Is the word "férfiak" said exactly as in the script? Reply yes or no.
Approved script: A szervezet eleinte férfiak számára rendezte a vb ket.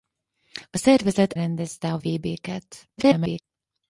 no